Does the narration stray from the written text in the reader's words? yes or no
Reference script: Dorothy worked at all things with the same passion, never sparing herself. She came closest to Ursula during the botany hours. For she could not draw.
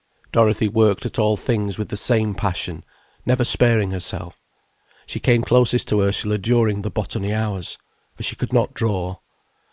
no